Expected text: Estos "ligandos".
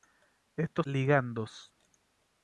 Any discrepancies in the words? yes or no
no